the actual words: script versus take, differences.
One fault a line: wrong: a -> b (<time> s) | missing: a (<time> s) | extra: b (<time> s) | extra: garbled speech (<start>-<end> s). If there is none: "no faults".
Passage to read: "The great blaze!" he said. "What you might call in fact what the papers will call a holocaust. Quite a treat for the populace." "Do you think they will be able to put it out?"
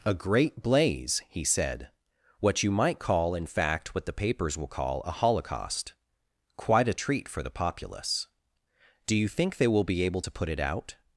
wrong: The -> A (0.0 s)